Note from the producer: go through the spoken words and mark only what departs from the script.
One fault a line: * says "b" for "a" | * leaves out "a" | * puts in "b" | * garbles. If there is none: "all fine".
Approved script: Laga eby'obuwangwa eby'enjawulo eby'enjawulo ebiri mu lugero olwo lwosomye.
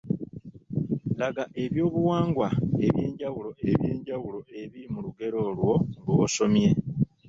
all fine